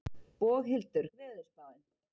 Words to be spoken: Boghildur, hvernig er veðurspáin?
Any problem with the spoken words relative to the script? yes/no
yes